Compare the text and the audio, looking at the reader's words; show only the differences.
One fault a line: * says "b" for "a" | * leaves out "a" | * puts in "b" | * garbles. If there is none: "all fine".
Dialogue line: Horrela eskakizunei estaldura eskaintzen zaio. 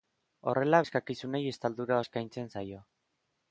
all fine